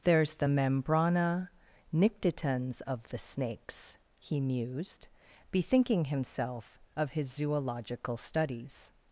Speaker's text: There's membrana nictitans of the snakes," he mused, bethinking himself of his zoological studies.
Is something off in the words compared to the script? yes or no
yes